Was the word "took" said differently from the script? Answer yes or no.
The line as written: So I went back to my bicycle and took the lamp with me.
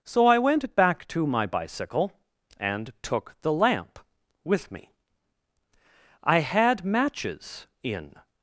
no